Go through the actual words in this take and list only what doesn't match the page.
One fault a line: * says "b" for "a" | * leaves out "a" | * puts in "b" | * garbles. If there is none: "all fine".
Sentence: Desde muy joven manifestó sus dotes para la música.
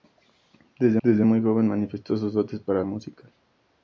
* puts in "desde"
* leaves out "la"